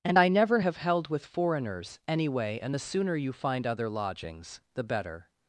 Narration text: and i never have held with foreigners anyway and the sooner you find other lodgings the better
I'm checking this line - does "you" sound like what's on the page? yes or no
yes